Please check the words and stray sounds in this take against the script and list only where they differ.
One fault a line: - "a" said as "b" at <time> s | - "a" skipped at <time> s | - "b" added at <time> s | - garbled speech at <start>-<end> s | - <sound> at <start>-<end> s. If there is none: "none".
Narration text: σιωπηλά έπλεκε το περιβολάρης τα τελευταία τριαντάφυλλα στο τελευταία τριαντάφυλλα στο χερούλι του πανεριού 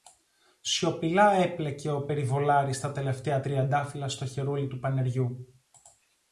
- "το" said as "ο" at 1.9 s
- "τελευταία τριαντάφυλλα στο" skipped at 4.2 s